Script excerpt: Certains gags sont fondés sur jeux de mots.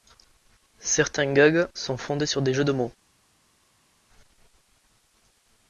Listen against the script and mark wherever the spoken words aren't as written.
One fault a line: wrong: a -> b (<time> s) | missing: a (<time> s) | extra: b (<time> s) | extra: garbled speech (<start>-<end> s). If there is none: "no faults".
extra: des (2.4 s)